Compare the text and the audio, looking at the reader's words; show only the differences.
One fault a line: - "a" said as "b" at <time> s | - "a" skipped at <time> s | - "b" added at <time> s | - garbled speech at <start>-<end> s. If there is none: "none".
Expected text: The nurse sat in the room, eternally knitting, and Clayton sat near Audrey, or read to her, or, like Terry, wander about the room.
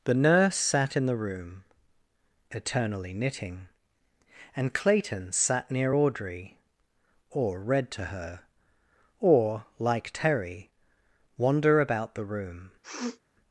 none